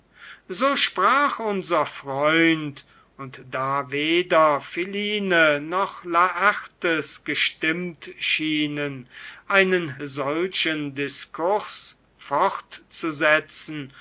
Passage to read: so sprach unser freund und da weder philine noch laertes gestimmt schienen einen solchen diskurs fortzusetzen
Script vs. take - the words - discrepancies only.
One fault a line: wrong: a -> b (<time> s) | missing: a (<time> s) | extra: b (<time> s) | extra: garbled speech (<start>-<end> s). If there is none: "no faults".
no faults